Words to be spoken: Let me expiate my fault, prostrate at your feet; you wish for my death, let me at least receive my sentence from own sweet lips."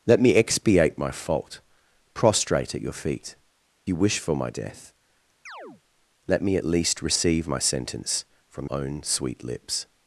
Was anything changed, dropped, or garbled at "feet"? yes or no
no